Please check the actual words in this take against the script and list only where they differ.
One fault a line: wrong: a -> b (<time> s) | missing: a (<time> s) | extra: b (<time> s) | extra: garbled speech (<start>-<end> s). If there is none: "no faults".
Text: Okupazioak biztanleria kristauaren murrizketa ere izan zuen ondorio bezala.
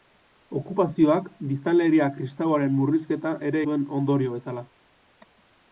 missing: izan (3.6 s)